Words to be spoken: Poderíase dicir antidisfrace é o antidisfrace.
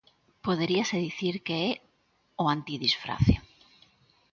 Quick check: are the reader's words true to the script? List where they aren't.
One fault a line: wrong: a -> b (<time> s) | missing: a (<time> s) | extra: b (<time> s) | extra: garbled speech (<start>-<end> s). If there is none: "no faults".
wrong: antidisfrace -> que (1.4 s)